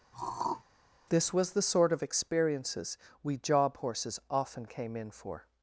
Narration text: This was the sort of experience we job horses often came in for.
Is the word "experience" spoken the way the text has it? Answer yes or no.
no